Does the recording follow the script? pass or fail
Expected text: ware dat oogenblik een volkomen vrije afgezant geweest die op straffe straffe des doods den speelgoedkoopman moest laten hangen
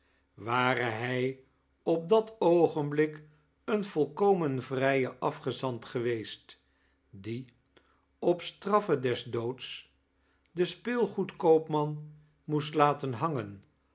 fail